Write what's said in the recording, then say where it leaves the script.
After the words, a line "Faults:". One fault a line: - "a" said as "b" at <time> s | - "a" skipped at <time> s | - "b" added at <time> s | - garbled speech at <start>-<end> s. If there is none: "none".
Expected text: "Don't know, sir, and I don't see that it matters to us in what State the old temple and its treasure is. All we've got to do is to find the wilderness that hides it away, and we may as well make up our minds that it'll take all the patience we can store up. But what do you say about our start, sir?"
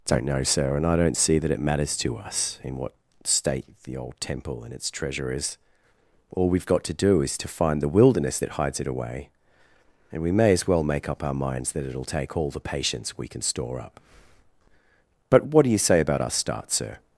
"Don't know, sir, and I don't see that it matters to us in what State the old temple and its treasure is. All we've got to do is to find the wilderness that hides it away, and we may as well make up our minds that it'll take all the patience we can store up. But what do you say about our start, sir?"
Faults:
none